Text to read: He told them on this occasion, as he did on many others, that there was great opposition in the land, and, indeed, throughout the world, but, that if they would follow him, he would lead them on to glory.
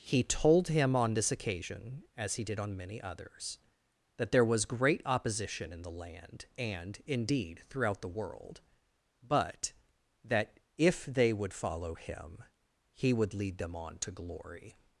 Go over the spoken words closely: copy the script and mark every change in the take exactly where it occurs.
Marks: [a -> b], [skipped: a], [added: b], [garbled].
He told [them -> him] on this occasion, as he did on many others, that there was great opposition in the land, and, indeed, throughout the world, but, that if they would follow him, he would lead them on to glory.